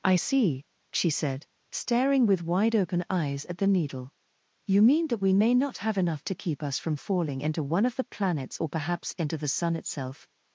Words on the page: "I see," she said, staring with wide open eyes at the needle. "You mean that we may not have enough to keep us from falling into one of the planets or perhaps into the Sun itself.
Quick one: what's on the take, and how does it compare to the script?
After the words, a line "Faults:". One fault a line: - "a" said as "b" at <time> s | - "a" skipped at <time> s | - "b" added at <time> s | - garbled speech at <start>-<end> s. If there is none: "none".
"I see," she said, staring with wide open eyes at the needle. "You mean that we may not have enough to keep us from falling into one of the planets or perhaps into the Sun itself.
Faults:
none